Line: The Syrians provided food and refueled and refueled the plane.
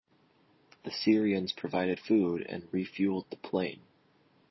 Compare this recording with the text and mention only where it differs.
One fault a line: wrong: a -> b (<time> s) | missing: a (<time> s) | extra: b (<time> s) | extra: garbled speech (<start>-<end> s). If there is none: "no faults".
missing: and refueled (3.3 s)